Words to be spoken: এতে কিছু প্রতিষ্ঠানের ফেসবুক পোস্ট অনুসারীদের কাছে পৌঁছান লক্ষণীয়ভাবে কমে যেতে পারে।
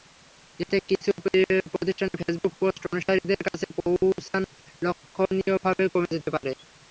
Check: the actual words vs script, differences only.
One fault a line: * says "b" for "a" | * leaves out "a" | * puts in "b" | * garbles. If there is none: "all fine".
all fine